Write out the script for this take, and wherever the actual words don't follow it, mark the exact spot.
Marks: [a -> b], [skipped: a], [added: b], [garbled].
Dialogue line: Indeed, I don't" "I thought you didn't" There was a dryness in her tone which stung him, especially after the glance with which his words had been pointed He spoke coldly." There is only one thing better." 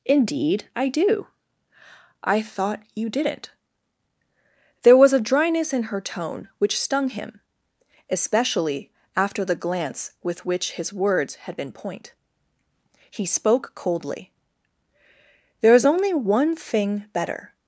Indeed, I [don't" -> do] "I thought you didn't" There was a dryness in her tone which stung him, especially after the glance with which his words had been [pointed -> point] He spoke coldly." There is only one thing better."